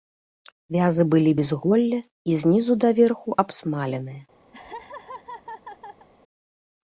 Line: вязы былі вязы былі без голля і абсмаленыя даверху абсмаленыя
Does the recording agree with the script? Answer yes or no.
no